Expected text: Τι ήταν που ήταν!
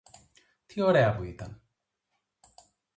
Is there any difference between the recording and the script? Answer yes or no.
yes